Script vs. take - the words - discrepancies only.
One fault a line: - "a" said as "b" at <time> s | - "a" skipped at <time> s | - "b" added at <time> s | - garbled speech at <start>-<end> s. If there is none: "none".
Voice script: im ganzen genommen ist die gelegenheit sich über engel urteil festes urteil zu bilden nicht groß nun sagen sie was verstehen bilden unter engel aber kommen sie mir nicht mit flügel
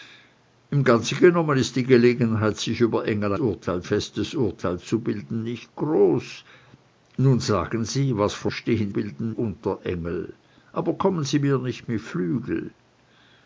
none